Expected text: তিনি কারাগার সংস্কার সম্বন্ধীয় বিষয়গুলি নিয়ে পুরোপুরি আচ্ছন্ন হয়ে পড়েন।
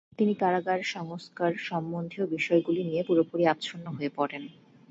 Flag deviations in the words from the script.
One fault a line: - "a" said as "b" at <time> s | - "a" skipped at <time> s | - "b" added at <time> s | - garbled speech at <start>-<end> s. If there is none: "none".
none